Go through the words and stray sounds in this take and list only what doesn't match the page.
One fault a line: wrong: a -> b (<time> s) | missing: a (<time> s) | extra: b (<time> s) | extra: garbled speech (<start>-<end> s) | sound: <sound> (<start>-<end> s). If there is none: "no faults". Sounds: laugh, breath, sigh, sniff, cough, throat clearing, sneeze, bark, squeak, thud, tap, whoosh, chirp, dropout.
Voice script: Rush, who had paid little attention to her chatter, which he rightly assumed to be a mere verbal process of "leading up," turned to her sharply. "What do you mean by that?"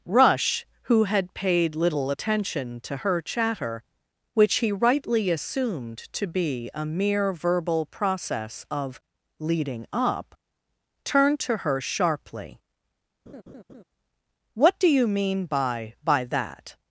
sound: laugh (13.3-13.8 s)
extra: by (16.0 s)